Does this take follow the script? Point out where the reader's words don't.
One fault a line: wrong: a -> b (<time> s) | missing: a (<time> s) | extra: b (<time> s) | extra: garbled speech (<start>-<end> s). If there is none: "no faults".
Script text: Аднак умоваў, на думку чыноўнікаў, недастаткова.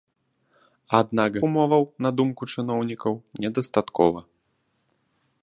no faults